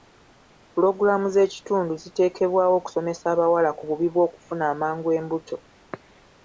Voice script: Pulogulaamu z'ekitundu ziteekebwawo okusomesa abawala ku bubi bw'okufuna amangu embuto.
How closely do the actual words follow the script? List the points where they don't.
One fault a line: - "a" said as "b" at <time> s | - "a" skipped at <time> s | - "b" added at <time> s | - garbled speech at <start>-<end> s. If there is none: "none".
none